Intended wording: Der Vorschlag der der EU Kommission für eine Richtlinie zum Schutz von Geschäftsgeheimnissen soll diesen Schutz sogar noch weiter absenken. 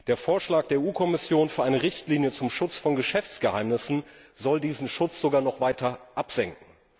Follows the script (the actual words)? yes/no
no